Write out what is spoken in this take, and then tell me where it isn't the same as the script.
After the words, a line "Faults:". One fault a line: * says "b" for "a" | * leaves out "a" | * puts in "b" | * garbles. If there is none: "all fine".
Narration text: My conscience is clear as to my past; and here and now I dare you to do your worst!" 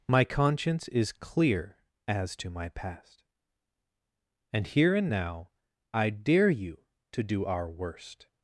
My conscience is clear as to my past; and here and now I dare you to do our worst!"
Faults:
* says "our" for "your"